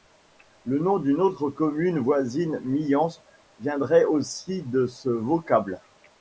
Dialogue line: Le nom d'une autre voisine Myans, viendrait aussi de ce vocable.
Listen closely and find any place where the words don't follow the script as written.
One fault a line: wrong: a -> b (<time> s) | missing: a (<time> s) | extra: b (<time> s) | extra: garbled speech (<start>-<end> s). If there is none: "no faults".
extra: commune (1.5 s)